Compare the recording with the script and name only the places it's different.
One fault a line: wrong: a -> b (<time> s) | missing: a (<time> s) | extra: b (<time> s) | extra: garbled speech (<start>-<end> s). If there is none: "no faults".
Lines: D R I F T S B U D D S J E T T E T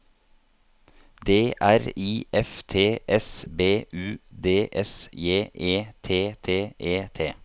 missing: D (4.7 s)